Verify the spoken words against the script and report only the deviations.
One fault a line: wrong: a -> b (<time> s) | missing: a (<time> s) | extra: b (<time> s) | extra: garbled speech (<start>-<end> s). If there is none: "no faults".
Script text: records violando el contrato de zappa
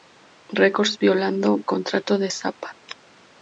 missing: el (1.6 s)